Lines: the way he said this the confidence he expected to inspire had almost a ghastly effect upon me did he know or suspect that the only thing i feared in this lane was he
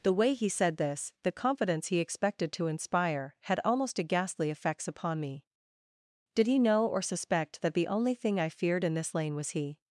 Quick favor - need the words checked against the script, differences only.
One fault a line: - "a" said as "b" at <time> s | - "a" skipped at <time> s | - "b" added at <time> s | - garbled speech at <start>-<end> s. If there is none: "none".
- "effect" said as "effects" at 4.5 s